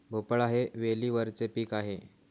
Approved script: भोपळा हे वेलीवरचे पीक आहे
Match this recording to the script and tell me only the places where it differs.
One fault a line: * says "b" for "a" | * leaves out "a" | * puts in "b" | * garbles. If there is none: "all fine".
all fine